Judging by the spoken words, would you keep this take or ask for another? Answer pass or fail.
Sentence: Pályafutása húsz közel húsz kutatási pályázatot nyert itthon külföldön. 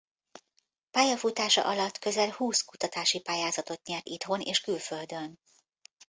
fail